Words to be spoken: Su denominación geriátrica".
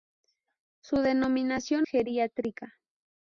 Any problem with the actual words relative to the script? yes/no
no